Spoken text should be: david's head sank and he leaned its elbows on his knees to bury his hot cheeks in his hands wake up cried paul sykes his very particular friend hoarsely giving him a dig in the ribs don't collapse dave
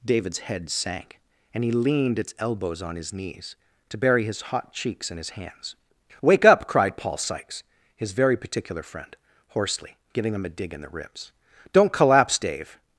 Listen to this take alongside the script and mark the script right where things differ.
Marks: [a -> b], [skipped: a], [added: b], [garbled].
david's head sank and he leaned its elbows on his knees to bury his hot cheeks in his hands wake up cried paul sykes his very particular friend hoarsely giving him a dig in the ribs don't collapse dave